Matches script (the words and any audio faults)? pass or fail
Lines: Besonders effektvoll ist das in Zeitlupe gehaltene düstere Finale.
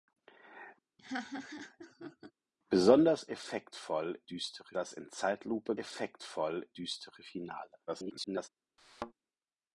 fail